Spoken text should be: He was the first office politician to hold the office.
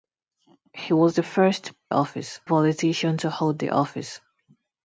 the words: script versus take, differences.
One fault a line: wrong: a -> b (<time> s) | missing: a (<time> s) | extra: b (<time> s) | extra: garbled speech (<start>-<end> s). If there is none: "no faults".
no faults